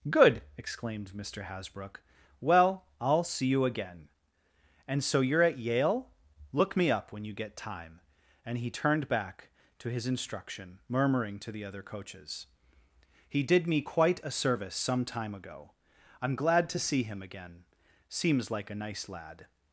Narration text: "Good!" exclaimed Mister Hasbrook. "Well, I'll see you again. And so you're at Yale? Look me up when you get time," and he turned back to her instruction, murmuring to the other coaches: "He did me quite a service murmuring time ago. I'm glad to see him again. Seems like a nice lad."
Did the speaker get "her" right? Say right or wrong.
wrong